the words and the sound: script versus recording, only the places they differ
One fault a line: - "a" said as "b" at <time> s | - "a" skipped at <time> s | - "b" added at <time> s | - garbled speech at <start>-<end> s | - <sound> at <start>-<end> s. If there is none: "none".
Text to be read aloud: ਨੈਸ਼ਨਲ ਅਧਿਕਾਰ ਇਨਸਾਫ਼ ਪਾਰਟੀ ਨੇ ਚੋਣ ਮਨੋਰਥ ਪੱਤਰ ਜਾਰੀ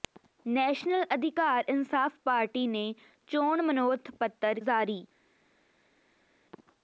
none